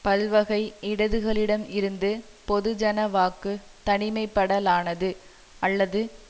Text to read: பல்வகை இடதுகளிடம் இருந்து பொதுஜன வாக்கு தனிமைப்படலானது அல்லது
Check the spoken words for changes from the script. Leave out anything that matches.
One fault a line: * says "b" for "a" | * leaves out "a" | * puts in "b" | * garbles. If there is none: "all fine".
all fine